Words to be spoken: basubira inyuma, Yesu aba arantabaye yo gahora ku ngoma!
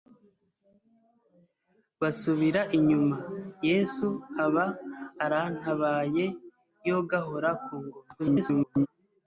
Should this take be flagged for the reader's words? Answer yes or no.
yes